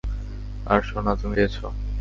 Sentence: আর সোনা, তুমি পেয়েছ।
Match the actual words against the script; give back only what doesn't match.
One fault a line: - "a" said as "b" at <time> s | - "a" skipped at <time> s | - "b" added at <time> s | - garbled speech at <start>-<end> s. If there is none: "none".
none